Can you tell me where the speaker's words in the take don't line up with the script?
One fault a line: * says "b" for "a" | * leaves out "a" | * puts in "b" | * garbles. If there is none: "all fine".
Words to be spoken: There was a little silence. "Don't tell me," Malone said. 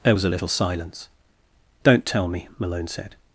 all fine